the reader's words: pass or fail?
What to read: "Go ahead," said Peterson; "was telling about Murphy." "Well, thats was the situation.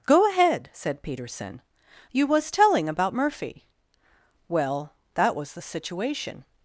fail